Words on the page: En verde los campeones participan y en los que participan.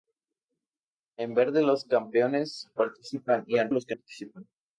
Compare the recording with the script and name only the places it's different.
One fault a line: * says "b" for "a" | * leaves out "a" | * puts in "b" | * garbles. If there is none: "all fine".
all fine